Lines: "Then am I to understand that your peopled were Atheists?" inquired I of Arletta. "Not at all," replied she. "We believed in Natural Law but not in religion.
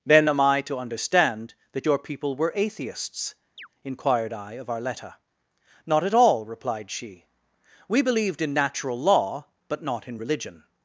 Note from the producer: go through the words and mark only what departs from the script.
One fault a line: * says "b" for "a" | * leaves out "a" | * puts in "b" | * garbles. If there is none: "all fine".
* says "people" for "peopled"